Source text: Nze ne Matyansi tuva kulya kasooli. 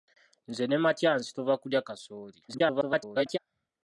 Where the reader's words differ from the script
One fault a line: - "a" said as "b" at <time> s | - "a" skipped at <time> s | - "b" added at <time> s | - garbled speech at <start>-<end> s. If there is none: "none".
- garbled speech at 2.5-3.4 s